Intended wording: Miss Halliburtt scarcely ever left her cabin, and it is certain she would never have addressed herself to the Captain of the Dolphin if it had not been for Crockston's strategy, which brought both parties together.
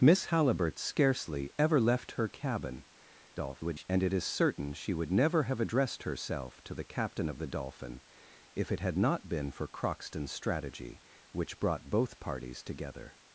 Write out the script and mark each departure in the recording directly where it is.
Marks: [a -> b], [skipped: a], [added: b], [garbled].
Miss Halliburtt scarcely ever left her cabin, [garbled] and it is certain she would never have addressed herself to the Captain of the Dolphin if it had not been for Crockston's strategy, which brought both parties together.